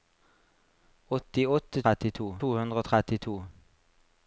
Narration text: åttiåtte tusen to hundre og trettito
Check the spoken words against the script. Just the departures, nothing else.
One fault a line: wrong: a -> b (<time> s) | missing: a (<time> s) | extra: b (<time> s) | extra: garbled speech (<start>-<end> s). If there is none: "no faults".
wrong: tusen -> trettito (1.8 s)